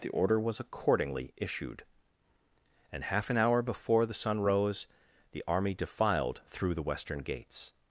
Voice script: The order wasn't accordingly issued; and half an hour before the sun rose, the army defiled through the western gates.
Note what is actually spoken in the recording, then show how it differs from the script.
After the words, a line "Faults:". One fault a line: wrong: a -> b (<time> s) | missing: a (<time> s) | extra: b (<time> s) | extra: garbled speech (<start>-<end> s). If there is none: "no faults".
The order was accordingly issued; and half an hour before the sun rose, the army defiled through the western gates.
Faults:
wrong: wasn't -> was (0.4 s)